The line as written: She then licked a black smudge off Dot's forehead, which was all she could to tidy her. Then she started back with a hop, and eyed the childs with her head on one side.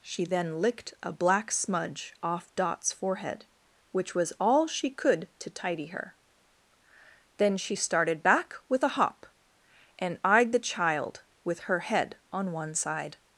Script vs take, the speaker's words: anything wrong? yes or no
yes